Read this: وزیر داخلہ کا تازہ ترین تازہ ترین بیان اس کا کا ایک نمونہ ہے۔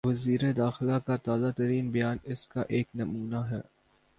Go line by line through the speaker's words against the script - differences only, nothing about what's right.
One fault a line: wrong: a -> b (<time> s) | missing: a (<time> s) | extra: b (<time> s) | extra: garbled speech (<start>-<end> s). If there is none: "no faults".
missing: تازہ ترین (1.9 s)
missing: کا (2.6 s)